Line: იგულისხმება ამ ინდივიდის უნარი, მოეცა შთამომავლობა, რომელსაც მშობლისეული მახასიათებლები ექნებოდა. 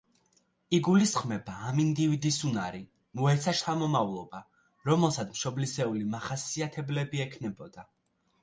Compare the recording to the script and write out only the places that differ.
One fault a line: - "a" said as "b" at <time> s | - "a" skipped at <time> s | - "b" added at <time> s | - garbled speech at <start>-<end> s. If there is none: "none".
none